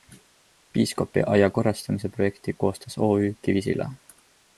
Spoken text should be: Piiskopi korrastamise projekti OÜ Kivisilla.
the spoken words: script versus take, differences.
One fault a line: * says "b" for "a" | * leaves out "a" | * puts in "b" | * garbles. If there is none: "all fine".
* puts in "aia"
* puts in "koostas"